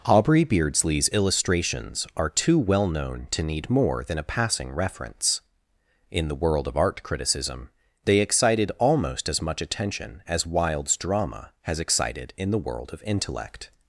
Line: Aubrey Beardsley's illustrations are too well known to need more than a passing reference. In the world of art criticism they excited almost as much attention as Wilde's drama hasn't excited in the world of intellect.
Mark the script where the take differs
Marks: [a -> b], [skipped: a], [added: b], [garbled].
Aubrey Beardsley's illustrations are too well known to need more than a passing reference. In the world of art criticism they excited almost as much attention as Wilde's drama [hasn't -> has] excited in the world of intellect.